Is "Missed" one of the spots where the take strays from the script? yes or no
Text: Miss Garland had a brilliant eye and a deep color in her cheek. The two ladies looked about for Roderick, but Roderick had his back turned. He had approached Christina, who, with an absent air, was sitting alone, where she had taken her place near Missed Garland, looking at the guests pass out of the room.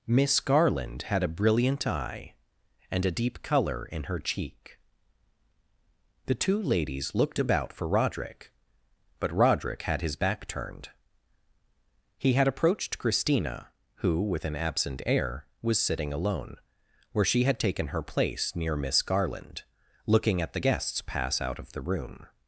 yes